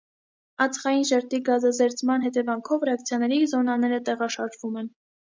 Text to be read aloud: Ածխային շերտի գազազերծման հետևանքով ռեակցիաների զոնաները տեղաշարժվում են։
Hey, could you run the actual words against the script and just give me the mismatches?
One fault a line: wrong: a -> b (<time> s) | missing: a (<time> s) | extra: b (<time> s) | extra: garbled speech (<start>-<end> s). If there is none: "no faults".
no faults